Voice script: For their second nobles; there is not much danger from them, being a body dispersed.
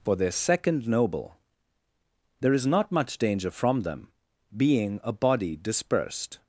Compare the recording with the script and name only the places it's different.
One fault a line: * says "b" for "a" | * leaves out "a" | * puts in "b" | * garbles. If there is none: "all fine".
* says "noble" for "nobles"